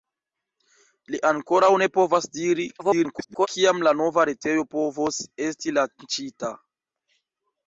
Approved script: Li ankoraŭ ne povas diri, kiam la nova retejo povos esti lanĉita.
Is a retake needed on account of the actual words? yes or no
yes